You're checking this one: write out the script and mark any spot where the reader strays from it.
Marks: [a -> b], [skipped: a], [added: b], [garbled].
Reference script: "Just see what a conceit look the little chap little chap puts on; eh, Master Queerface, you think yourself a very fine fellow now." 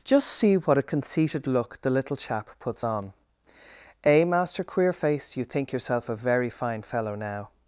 "Just see what a [conceit -> conceited] look the little chap [skipped: little chap] puts on; eh, Master Queerface, you think yourself a very fine fellow now."